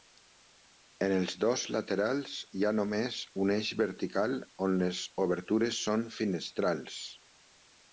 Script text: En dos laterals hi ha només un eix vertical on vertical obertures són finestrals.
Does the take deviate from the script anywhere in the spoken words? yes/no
yes